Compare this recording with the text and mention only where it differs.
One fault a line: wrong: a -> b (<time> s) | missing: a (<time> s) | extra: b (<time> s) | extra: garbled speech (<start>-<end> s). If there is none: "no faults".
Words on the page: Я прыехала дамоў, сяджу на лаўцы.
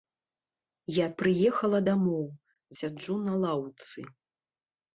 no faults